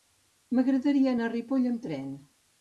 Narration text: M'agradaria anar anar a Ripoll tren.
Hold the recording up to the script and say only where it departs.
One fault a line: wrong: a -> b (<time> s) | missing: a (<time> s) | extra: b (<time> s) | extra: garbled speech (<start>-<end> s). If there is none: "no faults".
missing: anar (1.3 s)
extra: amb (1.7 s)